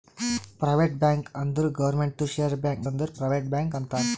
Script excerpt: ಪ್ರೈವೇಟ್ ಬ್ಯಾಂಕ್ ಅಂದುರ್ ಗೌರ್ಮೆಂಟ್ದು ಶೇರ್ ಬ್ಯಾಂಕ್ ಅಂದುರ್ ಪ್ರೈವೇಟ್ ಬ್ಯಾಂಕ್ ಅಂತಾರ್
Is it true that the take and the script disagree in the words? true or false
false